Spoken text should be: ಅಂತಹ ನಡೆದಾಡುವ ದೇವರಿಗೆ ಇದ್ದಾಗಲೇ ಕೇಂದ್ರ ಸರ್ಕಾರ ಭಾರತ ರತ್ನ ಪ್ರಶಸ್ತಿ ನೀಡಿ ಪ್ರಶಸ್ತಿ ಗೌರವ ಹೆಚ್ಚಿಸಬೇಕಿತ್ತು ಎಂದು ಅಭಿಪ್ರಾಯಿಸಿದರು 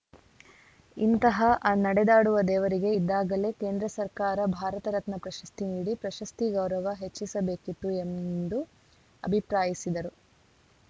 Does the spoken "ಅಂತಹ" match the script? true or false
false